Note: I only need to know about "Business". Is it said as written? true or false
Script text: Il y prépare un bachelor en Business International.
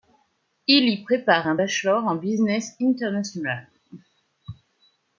true